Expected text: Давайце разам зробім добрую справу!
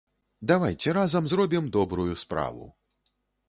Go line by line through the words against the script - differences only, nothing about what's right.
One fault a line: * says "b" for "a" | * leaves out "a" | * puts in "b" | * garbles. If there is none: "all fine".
all fine